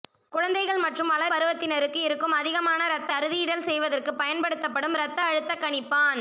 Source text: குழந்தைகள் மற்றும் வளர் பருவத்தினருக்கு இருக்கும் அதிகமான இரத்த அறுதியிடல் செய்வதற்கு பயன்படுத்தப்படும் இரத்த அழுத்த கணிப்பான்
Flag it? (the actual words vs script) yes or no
no